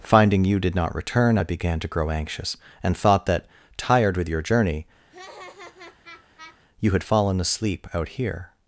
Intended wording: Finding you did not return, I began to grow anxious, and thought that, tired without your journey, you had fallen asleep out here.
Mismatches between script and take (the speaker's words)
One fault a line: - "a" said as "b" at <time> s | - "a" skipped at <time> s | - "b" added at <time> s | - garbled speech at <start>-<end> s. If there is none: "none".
- "without" said as "with" at 4.2 s